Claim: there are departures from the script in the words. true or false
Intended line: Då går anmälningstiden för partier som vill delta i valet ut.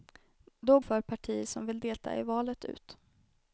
true